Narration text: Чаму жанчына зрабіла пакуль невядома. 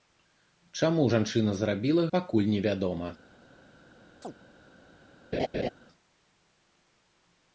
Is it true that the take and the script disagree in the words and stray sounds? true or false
true